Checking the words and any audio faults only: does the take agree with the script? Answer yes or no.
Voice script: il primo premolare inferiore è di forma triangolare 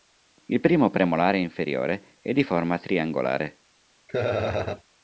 no